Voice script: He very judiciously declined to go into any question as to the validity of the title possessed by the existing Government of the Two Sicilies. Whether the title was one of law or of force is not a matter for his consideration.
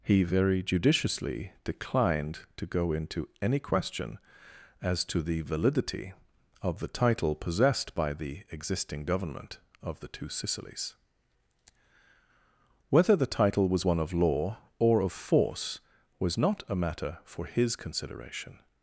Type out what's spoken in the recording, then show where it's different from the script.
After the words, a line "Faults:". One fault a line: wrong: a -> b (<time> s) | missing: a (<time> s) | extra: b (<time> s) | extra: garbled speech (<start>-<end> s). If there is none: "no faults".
He very judiciously declined to go into any question as to the validity of the title possessed by the existing Government of the Two Sicilies. Whether the title was one of law or of force was not a matter for his consideration.
Faults:
wrong: is -> was (16.2 s)